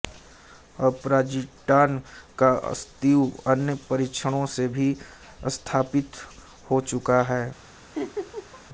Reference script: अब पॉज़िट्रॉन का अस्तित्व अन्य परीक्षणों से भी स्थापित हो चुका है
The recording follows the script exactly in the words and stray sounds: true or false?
false